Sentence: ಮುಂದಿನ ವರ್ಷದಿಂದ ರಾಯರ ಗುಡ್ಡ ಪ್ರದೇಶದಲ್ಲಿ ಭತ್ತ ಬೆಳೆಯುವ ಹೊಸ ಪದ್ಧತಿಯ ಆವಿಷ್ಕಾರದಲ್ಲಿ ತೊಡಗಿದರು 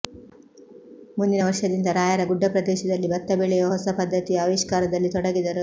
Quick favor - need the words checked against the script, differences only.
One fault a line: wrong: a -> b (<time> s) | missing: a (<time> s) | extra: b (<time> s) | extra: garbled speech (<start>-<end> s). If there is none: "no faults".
no faults